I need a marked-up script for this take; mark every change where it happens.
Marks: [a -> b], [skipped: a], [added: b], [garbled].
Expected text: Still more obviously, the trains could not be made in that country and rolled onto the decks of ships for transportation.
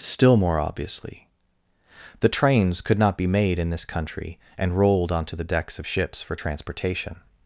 Still more obviously, the trains could not be made in [that -> this] country and rolled onto the decks of ships for transportation.